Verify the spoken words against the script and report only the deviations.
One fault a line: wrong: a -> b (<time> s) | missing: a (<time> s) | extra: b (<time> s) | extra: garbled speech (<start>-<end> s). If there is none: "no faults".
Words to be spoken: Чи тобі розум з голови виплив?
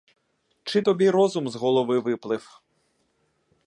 no faults